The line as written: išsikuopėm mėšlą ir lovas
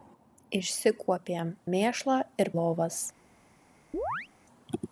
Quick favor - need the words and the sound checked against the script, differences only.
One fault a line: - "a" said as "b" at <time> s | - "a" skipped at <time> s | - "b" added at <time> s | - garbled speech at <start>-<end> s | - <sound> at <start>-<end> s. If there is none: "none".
- chirp at 3.9-4.3 s